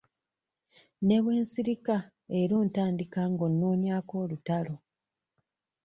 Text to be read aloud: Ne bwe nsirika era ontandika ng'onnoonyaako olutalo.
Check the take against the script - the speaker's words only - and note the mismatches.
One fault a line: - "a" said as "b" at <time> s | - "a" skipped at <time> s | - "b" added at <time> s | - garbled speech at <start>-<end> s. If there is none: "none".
none